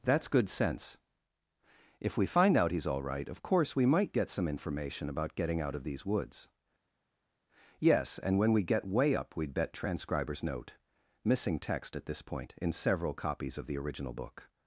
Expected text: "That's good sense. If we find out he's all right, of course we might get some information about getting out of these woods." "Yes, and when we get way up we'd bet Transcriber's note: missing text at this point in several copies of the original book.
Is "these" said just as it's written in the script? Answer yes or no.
yes